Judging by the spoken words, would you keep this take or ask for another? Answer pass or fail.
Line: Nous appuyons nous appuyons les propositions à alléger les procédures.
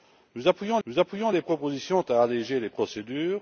pass